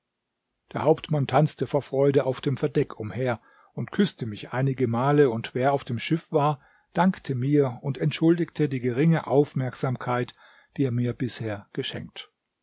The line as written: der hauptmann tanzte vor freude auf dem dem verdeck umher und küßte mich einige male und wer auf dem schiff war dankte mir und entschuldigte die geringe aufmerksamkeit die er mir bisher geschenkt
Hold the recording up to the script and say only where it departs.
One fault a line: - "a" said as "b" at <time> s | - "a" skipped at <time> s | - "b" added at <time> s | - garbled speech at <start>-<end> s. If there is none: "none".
- "dem" skipped at 2.6 s